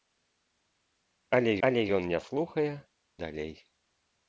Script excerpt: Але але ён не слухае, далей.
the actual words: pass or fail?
pass